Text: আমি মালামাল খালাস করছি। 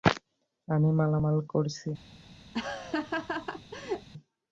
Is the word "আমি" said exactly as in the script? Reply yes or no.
yes